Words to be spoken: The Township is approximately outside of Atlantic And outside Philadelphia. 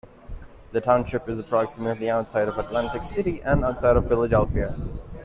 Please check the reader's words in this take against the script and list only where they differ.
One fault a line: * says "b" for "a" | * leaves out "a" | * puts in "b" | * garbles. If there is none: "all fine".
* puts in "City"
* puts in "of"